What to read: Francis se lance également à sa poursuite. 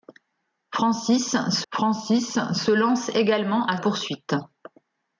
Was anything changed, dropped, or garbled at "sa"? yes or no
yes